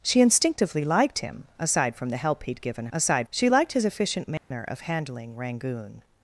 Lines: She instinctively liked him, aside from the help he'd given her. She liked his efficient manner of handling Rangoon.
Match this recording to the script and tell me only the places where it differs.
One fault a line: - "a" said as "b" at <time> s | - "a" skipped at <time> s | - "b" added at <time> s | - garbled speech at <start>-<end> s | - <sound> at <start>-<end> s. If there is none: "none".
- "her" said as "aside" at 2.9 s
- dropout at 4.4-4.5 s